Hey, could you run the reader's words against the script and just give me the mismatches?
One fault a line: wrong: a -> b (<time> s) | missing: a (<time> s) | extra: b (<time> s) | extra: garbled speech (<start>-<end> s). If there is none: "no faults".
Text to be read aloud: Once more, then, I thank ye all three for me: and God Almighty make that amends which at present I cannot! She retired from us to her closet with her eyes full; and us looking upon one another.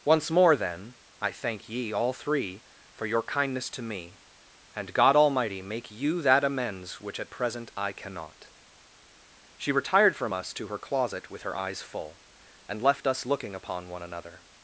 extra: your kindness to (3.0 s)
extra: you (5.9 s)
extra: left (12.8 s)